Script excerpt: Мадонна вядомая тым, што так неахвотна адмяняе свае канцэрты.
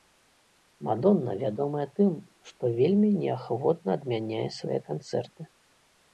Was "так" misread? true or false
true